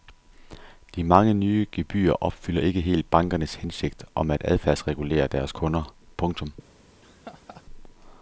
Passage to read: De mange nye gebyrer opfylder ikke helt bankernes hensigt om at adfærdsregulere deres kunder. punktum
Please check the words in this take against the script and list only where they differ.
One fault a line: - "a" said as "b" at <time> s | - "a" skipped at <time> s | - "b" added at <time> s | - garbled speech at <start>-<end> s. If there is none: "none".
none